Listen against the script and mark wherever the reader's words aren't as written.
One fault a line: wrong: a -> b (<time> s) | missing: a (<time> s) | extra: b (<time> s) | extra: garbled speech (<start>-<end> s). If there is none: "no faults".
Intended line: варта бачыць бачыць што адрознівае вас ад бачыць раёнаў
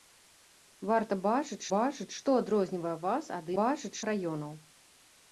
no faults